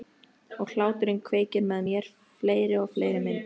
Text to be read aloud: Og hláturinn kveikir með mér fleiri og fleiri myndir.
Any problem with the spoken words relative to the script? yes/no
no